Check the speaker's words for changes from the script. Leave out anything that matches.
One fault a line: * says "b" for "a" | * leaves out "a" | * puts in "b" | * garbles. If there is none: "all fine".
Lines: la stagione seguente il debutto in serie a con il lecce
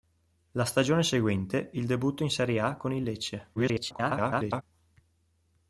* garbles